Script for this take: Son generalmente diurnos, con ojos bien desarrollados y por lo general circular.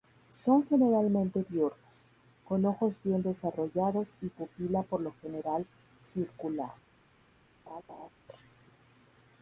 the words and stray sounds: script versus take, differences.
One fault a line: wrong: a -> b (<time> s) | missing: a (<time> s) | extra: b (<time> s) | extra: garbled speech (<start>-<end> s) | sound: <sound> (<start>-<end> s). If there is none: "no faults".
extra: pupila (4.3 s)
sound: laugh (7.7-8.1 s)